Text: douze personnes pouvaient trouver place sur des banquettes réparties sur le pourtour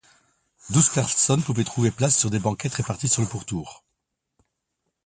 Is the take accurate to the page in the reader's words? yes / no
yes